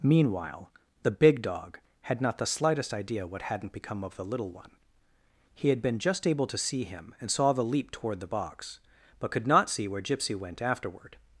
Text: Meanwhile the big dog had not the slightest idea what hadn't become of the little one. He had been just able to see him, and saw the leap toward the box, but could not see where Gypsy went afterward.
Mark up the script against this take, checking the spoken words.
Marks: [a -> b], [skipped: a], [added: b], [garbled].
Meanwhile the big dog had not the slightest idea what hadn't become of the little one. He had been just able to see him, and saw the leap toward the box, but could not see where Gypsy went afterward.